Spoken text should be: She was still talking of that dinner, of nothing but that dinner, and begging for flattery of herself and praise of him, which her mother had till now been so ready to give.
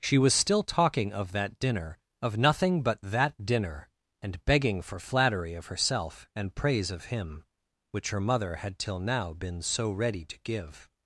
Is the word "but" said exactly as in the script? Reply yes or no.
yes